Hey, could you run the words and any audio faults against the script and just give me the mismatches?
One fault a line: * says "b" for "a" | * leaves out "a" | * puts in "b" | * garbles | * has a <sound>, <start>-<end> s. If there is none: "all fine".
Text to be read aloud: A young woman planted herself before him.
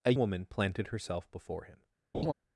* leaves out "young"
* has a laugh, 2.1-2.3 s